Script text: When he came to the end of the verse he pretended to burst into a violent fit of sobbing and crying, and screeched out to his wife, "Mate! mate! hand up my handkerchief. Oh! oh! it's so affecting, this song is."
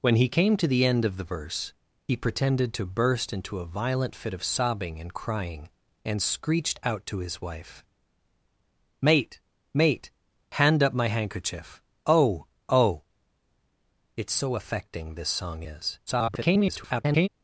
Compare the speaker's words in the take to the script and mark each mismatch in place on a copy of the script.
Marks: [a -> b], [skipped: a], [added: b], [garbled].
When he came to the end of the verse he pretended to burst into a violent fit of sobbing and crying, and screeched out to his wife, "Mate! mate! hand up my handkerchief. Oh! oh! it's so affecting, this song is." [garbled]